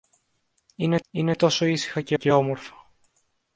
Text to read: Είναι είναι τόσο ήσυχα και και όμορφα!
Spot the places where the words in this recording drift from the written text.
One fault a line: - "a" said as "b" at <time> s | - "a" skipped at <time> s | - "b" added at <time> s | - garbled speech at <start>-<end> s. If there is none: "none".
none